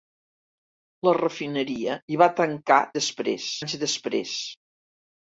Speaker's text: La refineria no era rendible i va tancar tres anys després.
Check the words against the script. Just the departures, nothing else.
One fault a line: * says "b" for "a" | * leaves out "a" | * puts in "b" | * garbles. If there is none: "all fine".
* leaves out "no era rendible"
* says "després" for "tres"